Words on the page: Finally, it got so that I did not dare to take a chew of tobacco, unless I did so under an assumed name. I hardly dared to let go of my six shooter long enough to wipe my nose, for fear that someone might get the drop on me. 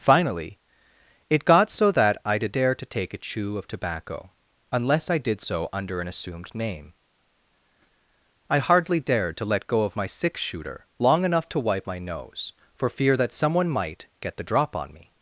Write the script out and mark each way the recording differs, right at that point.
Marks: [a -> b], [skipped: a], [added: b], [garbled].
Finally, it got so that I did [skipped: not] dare to take a chew of tobacco, unless I did so under an assumed name. I hardly dared to let go of my six shooter long enough to wipe my nose, for fear that someone might get the drop on me.